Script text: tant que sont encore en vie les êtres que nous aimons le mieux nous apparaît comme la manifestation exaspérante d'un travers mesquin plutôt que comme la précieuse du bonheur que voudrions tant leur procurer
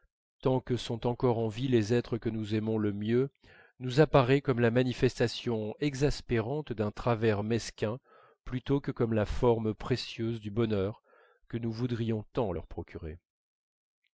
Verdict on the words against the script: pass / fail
fail